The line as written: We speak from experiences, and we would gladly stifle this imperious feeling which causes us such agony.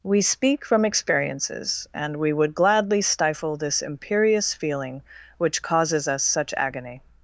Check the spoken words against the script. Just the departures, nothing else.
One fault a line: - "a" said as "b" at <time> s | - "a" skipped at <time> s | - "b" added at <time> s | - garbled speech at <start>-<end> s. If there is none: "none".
none